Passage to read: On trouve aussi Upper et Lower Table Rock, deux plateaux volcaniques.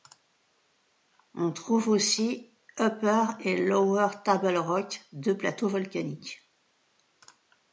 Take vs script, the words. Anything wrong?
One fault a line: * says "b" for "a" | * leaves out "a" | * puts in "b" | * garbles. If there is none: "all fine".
all fine